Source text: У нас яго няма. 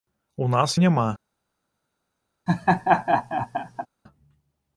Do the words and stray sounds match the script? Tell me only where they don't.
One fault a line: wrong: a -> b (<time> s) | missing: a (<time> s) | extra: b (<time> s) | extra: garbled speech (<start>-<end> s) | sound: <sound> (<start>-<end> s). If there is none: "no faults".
missing: яго (0.8 s)
sound: laugh (2.5-3.9 s)